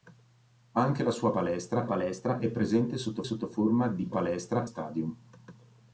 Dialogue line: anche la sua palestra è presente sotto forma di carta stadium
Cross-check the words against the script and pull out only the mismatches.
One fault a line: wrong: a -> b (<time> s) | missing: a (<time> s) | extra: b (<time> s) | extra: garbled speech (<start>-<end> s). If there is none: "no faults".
extra: palestra (1.8 s)
extra: sotto (3.2 s)
wrong: carta -> palestra (4.1 s)